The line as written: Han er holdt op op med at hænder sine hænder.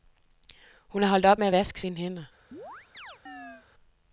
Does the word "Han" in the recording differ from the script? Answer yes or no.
yes